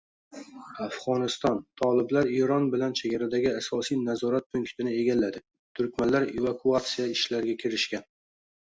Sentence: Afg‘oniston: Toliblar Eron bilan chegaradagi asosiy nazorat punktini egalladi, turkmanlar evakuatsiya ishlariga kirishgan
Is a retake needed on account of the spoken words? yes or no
no